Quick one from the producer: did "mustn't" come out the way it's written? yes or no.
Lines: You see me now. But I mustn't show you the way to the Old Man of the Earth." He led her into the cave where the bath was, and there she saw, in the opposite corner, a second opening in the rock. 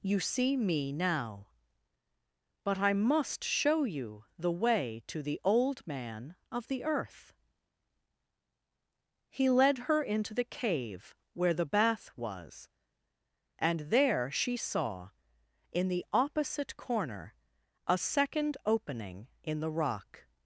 no